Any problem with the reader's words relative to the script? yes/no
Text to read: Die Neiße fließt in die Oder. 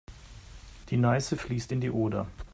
no